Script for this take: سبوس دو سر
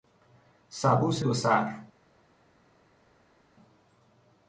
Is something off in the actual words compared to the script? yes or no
no